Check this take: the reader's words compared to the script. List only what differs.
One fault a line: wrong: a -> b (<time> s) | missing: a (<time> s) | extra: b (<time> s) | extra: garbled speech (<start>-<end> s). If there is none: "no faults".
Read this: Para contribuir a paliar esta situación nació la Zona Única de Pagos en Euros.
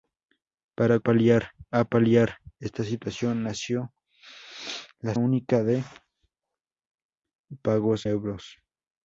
wrong: contribuir -> paliar (1.0 s)
missing: Zona (5.1 s)
missing: en (8.1 s)